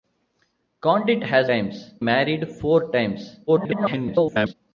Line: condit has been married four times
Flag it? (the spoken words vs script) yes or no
yes